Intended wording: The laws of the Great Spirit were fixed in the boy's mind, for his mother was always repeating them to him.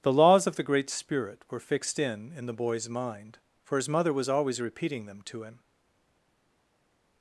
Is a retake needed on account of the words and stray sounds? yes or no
yes